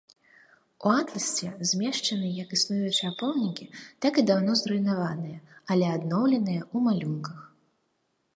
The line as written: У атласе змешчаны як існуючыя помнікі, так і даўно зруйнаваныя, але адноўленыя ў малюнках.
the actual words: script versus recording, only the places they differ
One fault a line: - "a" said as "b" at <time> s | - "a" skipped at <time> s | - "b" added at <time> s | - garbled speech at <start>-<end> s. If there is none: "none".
none